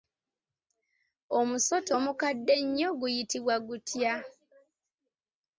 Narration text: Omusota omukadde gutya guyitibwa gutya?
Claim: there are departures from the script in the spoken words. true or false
true